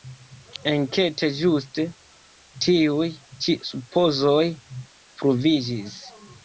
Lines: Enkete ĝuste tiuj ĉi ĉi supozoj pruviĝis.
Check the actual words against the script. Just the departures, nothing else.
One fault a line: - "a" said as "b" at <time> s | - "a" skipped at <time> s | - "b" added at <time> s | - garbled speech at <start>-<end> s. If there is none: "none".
- "ĉi" skipped at 3.6 s